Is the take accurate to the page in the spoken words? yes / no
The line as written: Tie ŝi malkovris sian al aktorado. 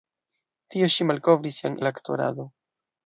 yes